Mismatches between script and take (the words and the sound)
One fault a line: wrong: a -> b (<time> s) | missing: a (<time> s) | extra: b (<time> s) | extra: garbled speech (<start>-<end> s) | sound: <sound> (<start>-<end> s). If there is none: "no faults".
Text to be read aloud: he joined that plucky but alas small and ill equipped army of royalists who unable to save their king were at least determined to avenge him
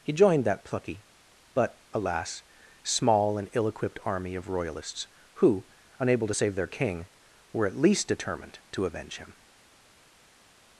no faults